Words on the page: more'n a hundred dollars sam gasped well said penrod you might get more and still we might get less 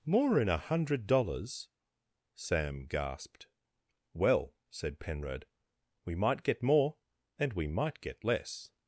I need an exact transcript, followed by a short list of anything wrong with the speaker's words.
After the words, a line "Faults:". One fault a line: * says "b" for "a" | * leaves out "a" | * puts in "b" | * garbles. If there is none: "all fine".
more'n a hundred dollars sam gasped well said penrod we might get more and we might get less
Faults:
* says "we" for "you"
* leaves out "still"